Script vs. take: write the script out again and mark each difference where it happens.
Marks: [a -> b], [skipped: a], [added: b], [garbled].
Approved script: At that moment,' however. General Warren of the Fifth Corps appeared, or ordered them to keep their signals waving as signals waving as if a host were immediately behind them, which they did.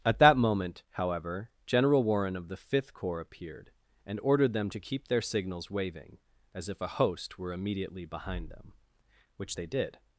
At that moment,' however. General Warren of the Fifth Corps appeared, [or -> and] ordered them to keep their signals waving as [skipped: signals waving as] if a host were immediately behind them, which they did.